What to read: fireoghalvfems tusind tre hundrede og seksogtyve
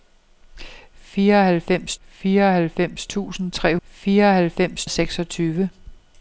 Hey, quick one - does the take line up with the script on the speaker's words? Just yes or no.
no